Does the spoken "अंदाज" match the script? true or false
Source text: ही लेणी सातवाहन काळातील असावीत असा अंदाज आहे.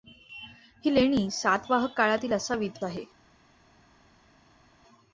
false